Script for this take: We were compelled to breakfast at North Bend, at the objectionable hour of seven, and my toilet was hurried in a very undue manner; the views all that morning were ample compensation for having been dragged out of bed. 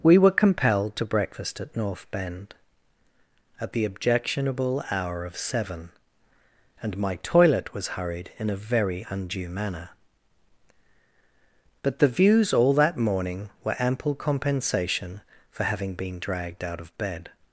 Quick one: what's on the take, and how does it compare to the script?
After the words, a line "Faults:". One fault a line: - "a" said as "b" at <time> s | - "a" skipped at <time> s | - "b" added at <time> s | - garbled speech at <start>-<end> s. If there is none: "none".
We were compelled to breakfast at North Bend, at the objectionable hour of seven, and my toilet was hurried in a very undue manner; but the views all that morning were ample compensation for having been dragged out of bed.
Faults:
- "but" added at 11.8 s